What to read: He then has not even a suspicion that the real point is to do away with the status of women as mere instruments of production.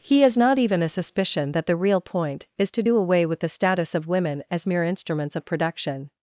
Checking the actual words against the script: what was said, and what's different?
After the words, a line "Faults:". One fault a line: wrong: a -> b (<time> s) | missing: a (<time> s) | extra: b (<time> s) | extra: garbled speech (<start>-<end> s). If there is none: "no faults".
He has not even a suspicion that the real point is to do away with the status of women as mere instruments of production.
Faults:
missing: then (0.2 s)